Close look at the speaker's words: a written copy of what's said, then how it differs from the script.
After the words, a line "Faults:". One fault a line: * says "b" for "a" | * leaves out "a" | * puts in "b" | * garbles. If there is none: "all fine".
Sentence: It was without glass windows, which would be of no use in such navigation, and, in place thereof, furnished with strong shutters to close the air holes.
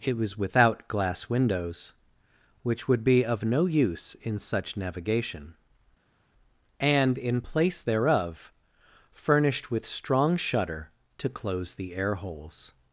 It was without glass windows, which would be of no use in such navigation, and, in place thereof, furnished with strong shutter to close the air holes.
Faults:
* says "shutter" for "shutters"